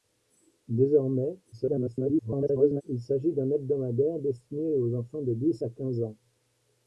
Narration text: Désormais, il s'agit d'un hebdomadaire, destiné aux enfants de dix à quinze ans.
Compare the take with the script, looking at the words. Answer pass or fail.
fail